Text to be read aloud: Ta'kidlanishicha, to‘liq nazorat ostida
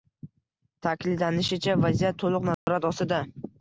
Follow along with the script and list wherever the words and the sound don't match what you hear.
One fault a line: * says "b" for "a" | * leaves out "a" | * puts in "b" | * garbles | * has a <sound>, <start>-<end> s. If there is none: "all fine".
* puts in "vaziyat"
* has a dropout, 2.5-2.7 s